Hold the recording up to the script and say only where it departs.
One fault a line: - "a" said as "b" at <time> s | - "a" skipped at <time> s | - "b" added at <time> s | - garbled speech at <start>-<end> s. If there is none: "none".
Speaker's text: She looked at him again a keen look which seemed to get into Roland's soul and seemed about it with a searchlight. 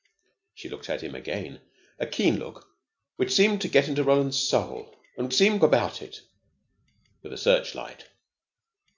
none